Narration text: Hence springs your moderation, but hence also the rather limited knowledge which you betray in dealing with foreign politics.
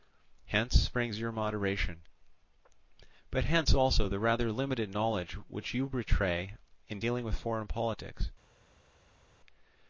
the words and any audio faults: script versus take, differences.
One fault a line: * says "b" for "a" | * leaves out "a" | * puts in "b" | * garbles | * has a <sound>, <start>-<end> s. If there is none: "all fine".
all fine